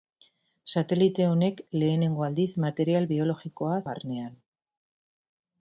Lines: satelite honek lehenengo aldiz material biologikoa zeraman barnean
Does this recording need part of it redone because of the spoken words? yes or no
yes